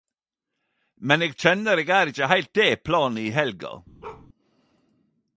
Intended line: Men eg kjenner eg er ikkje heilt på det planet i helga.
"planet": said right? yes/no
yes